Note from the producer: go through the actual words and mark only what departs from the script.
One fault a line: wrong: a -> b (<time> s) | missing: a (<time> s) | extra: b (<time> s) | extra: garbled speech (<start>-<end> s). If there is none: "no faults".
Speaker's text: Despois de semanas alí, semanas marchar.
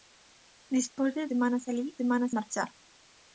no faults